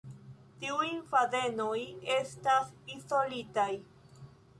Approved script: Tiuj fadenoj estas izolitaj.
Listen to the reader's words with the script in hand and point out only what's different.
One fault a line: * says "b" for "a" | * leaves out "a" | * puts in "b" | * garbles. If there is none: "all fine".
all fine